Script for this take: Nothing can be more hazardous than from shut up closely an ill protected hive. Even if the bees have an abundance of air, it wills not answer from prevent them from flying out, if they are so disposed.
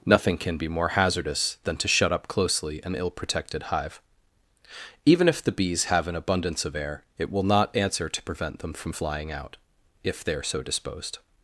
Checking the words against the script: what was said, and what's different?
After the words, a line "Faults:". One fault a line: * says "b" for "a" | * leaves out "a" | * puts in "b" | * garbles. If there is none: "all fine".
Nothing can be more hazardous than to shut up closely an ill protected hive. Even if the bees have an abundance of air, it will not answer to prevent them from flying out, if they are so disposed.
Faults:
* says "to" for "from"
* says "will" for "wills"
* says "to" for "from"